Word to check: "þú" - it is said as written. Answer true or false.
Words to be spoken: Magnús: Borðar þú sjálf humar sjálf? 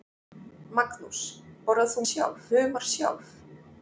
true